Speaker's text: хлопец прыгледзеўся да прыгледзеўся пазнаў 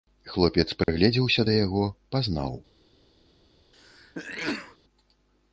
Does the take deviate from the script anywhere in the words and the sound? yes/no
yes